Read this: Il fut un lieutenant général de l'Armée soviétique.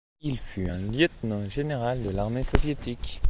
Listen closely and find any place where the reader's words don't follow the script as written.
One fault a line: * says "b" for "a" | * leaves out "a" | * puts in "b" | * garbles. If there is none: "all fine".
all fine